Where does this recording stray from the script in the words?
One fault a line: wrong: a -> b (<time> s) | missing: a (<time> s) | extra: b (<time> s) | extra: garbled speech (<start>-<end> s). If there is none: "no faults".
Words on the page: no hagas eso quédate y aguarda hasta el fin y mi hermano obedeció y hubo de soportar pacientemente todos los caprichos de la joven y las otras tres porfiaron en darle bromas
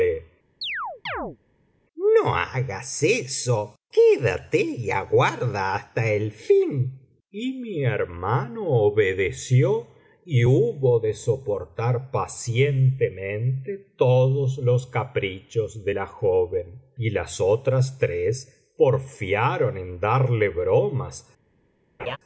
no faults